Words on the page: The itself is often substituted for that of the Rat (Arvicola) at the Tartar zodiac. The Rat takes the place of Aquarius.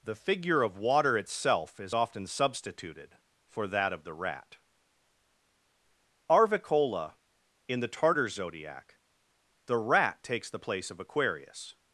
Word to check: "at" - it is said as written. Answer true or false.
false